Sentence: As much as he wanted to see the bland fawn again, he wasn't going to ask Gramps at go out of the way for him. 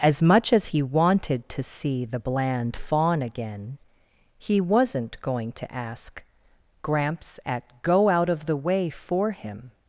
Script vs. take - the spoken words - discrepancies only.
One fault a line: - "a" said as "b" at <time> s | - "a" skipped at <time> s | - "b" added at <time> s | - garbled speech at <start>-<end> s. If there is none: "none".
none